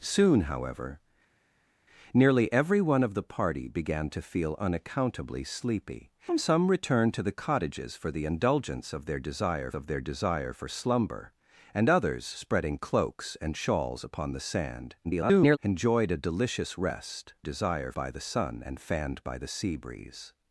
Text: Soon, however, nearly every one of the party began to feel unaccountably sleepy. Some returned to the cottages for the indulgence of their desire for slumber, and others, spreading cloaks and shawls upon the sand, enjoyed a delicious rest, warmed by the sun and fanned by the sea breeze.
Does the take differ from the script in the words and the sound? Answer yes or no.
yes